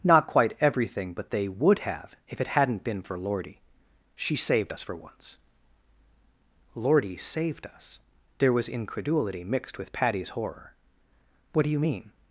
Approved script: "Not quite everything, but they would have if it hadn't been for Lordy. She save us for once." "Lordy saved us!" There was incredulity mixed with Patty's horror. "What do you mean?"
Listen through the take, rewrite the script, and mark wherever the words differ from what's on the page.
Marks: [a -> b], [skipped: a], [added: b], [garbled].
"Not quite everything, but they would have if it hadn't been for Lordy. She [save -> saved] us for once." "Lordy saved us!" There was incredulity mixed with Patty's horror. "What do you mean?"